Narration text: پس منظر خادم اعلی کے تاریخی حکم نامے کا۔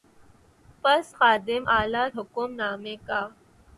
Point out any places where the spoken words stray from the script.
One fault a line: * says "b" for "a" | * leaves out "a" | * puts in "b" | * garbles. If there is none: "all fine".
* leaves out "منظر"
* leaves out "کے تاریخی"